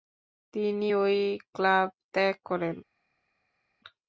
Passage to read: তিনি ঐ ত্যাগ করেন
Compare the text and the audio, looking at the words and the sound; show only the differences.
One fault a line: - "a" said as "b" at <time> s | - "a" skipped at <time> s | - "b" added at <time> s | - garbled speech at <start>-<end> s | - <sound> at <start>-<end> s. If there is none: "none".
- "ক্লাব" added at 1.5 s